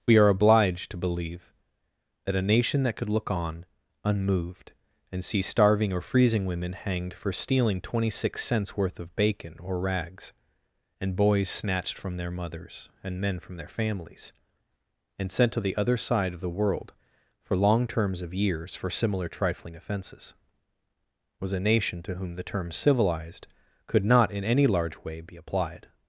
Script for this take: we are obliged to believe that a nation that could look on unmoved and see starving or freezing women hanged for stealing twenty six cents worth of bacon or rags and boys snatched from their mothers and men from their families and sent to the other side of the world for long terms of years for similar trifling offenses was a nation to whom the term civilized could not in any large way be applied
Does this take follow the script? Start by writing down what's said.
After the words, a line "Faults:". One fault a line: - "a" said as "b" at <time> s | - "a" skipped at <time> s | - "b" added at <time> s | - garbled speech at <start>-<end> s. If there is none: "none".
we are obliged to believe that a nation that could look on unmoved and see starving or freezing women hanged for stealing twenty six cents worth of bacon or rags and boys snatched from their mothers and men from their families and sent to the other side of the world for long terms of years for similar trifling offenses was a nation to whom the term civilized could not in any large way be applied
Faults:
none